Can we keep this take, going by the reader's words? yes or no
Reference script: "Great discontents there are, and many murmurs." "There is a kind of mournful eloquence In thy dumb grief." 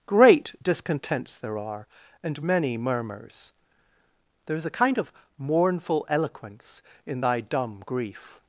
yes